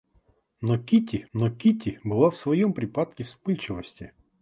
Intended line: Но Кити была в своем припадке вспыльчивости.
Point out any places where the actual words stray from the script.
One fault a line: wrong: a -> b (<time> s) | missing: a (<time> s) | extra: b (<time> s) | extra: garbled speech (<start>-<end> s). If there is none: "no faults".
extra: но Кити (1.3 s)